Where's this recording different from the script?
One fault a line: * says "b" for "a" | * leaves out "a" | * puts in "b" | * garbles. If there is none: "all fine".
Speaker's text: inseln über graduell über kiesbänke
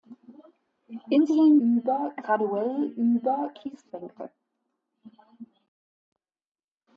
all fine